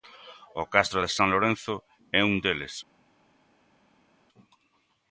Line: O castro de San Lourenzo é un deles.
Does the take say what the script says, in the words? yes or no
yes